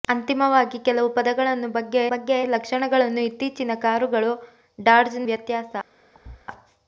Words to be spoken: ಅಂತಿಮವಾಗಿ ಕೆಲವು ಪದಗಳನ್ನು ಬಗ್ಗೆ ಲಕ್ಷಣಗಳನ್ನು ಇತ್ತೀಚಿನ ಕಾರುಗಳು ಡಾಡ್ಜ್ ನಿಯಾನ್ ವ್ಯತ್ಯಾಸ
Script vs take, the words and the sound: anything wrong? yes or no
yes